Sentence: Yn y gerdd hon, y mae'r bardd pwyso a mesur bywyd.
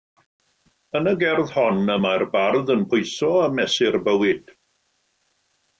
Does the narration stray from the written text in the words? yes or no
yes